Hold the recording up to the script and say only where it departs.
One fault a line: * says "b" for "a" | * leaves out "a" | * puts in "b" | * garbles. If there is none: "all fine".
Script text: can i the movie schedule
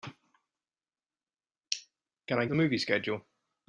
all fine